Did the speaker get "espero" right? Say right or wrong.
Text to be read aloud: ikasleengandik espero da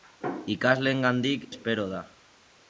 right